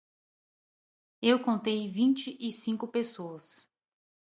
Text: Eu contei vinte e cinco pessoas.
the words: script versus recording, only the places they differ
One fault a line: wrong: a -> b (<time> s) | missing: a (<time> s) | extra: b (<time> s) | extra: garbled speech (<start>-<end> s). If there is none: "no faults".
no faults